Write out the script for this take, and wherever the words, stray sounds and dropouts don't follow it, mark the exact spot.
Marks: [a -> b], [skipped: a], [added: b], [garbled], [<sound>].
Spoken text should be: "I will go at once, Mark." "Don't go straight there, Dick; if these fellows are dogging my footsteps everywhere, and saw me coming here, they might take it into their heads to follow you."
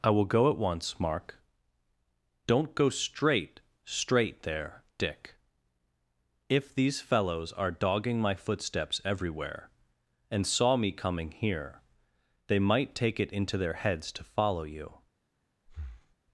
"I will go at once, Mark." "Don't go straight [added: straight] there, Dick; if these fellows are dogging my footsteps everywhere, and saw me coming here, they might take it into their heads to follow you." [breath]